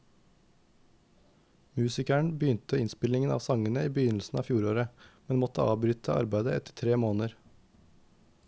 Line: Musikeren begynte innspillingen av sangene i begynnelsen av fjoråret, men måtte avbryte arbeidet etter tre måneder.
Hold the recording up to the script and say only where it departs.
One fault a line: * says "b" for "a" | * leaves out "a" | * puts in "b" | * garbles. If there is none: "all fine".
all fine